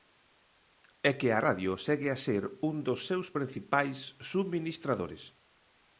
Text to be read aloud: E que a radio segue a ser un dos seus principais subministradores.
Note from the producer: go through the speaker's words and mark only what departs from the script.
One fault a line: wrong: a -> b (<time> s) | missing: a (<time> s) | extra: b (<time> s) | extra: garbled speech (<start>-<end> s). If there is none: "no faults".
no faults